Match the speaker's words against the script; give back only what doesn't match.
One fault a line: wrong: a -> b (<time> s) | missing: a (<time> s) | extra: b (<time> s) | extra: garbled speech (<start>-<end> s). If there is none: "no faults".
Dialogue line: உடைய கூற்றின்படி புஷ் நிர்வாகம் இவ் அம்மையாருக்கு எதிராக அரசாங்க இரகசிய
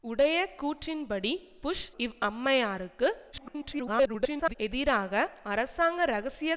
missing: நிர்வாகம் (1.9 s)
extra: garbled speech (3.3-4.5 s)